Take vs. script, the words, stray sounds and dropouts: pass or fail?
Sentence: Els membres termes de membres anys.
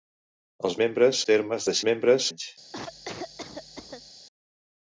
fail